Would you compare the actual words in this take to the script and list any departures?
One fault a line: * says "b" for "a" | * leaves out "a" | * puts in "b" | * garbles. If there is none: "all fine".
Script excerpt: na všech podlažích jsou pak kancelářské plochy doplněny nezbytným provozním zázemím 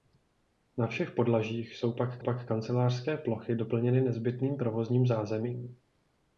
* puts in "pak"